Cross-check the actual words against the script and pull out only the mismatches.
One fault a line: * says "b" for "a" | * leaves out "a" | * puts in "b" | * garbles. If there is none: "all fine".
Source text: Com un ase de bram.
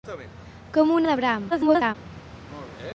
* leaves out "ase"
* garbles